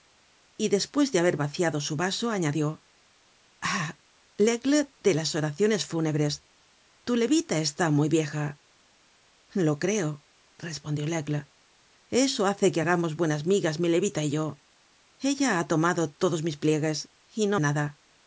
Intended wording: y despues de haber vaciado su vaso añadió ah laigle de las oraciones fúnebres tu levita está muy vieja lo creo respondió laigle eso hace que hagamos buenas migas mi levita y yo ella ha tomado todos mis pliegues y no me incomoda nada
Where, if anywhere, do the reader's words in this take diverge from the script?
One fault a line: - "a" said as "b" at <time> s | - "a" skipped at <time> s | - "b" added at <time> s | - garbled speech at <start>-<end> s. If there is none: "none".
- "me incomoda" skipped at 17.6 s